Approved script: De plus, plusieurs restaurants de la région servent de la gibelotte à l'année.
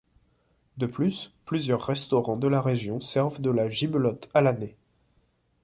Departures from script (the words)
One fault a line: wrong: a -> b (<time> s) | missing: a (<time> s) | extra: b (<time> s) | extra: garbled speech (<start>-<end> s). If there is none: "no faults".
no faults